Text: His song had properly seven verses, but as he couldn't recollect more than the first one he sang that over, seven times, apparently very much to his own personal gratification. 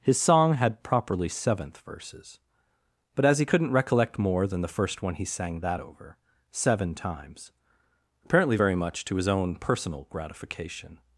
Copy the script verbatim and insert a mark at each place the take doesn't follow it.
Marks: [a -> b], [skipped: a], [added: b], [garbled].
His song had properly [seven -> seventh] verses, but as he couldn't recollect more than the first one he sang that over, seven times, apparently very much to his own personal gratification.